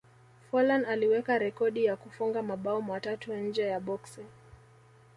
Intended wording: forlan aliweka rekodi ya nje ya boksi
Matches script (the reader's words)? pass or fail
fail